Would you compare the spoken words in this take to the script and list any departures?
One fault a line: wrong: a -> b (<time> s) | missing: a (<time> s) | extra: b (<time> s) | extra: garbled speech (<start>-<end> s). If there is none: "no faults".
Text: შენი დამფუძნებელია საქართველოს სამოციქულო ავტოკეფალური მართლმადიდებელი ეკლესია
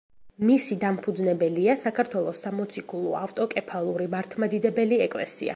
wrong: შენი -> მისი (0.5 s)